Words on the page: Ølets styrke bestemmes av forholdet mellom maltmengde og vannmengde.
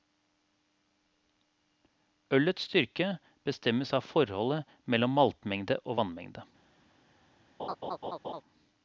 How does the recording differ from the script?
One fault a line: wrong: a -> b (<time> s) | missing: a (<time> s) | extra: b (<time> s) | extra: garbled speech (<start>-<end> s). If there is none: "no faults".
no faults